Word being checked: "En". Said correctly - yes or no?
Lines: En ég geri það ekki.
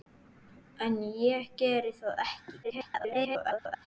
yes